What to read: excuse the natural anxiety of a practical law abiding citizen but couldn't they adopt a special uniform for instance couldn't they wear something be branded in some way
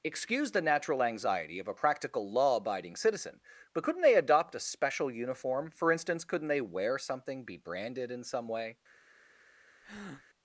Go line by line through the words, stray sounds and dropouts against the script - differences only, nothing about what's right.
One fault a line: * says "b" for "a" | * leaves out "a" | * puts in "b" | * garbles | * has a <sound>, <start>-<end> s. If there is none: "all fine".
* has a breath, 9.8-10.2 s